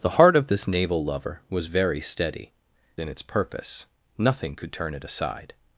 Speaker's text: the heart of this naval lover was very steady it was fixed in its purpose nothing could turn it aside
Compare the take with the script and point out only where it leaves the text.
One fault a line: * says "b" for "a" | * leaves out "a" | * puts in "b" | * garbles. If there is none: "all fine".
* leaves out "it was fixed"